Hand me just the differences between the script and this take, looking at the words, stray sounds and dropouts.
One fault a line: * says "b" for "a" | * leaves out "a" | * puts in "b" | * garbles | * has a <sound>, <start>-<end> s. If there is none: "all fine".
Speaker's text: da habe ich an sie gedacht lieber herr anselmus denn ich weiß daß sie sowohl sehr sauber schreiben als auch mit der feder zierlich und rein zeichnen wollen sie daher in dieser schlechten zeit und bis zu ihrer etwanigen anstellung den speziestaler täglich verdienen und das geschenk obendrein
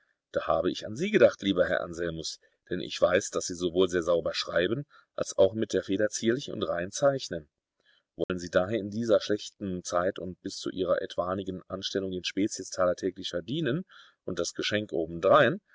* has a dropout, 8.2-8.3 s